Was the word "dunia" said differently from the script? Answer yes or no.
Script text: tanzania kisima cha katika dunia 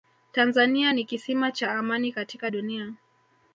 no